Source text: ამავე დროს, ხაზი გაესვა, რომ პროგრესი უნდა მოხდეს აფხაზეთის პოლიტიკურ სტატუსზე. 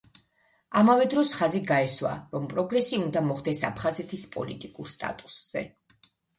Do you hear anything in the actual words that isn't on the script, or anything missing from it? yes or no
no